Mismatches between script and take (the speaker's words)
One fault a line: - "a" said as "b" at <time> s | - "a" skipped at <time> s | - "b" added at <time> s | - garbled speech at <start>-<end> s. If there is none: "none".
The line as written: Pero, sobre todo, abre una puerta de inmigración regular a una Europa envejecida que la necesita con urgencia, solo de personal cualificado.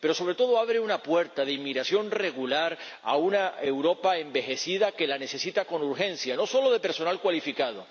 - "no" added at 6.3 s